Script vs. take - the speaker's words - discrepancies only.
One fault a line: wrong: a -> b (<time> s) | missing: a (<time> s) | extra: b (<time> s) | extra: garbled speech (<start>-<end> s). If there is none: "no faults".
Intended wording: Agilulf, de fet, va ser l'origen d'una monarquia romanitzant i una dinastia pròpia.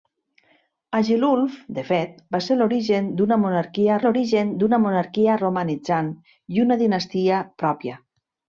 extra: l'origen d'una monarquia (4.0 s)